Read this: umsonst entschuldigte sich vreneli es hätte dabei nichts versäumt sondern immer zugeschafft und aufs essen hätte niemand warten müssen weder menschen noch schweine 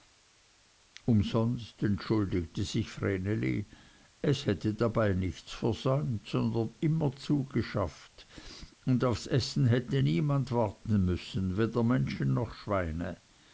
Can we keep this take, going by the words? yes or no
yes